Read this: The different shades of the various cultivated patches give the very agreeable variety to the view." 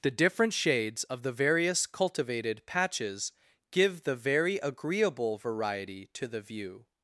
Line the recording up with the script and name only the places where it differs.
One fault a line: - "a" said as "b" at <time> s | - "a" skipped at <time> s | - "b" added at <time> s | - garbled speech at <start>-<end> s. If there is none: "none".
none